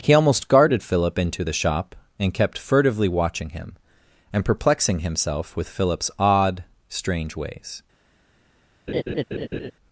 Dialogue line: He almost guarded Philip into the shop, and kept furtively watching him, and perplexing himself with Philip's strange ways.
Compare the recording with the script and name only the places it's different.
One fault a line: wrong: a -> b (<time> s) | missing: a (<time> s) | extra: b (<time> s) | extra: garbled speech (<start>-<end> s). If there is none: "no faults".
extra: odd (6.2 s)